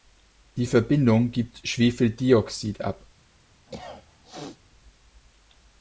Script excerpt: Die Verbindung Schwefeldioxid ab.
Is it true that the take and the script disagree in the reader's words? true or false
true